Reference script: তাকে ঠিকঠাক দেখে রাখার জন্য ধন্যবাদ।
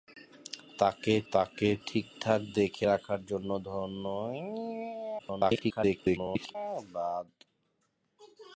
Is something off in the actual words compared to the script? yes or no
yes